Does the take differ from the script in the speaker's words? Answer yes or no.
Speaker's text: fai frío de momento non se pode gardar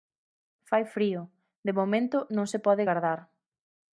no